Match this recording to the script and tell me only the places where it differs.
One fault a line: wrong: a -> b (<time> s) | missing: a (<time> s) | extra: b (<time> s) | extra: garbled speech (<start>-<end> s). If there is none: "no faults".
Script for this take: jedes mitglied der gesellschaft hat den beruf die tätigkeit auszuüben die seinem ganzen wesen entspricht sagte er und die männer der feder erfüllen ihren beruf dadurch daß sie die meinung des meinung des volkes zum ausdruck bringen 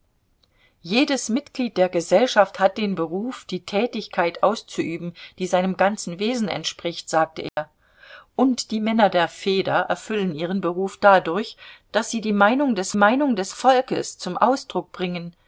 no faults